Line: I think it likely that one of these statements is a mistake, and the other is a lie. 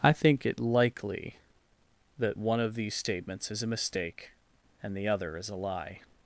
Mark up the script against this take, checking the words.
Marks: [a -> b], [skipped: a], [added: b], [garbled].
I think it likely that one of these statements is a mistake, and the other is a lie.